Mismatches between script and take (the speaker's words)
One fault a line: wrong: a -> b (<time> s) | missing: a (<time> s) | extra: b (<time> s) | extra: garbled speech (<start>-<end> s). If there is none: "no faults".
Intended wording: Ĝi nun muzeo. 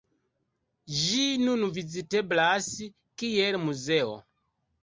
extra: viziteblas kiel (1.8 s)